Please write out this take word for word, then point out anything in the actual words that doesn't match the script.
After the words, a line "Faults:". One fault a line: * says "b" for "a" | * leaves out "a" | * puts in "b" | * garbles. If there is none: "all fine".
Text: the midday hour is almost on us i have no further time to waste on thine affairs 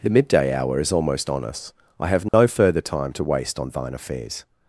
the midday hour is almost on us i have no further time to waste on thine affairs
Faults:
all fine